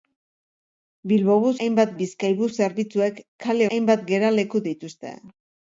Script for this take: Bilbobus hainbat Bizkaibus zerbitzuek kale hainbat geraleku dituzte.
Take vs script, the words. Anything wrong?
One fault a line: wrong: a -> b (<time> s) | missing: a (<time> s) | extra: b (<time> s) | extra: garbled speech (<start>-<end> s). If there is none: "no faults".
no faults